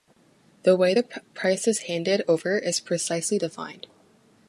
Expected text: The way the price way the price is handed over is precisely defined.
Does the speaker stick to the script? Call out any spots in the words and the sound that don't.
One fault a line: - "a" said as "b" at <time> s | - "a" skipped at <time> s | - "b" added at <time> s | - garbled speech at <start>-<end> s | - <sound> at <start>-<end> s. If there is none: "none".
- "way the price" skipped at 1.7 s